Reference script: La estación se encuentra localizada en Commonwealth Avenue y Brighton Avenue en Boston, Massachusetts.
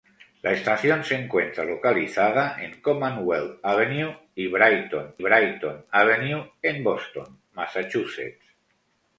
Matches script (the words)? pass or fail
fail